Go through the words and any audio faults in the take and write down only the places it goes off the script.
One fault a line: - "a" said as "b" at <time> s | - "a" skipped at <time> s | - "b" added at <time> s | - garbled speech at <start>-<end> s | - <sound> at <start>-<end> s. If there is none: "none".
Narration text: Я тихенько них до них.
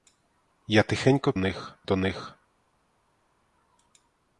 none